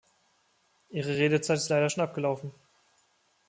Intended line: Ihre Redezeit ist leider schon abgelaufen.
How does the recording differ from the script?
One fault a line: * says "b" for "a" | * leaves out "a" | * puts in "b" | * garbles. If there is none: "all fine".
all fine